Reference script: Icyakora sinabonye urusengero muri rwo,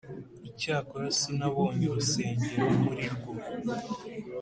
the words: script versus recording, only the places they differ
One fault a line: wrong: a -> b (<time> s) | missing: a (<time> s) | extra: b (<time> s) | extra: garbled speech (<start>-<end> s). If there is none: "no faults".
no faults